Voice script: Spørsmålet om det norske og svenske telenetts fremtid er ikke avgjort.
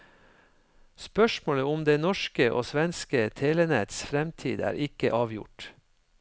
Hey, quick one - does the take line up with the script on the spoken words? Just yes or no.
yes